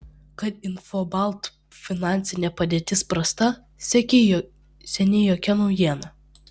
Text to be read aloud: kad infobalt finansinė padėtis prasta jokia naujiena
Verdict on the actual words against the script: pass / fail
fail